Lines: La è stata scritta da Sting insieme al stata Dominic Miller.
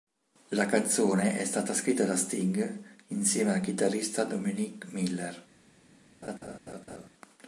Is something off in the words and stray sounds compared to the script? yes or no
yes